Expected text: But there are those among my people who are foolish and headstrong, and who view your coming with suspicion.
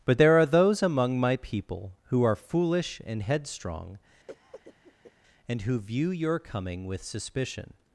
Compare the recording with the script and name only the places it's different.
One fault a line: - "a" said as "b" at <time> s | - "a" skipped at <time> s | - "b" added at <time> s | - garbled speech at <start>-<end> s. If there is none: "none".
none